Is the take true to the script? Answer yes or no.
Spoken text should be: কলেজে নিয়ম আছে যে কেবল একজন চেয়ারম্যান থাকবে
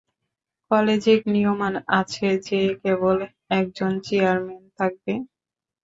yes